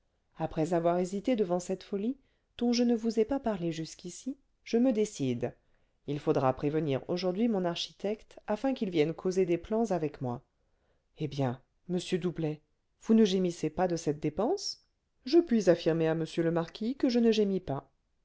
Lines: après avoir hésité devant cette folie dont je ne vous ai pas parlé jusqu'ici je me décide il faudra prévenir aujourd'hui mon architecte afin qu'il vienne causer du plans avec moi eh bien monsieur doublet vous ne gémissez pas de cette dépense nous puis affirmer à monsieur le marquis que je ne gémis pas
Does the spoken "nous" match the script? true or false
false